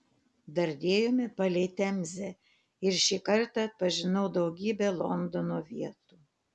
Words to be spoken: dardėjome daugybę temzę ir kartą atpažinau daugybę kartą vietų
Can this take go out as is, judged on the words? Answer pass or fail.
fail